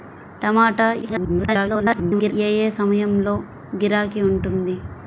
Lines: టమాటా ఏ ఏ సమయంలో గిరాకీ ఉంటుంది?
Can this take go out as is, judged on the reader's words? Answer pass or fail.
fail